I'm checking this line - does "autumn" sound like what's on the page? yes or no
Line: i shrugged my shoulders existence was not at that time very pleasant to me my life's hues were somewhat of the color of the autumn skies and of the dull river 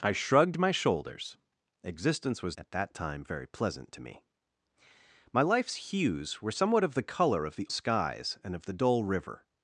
no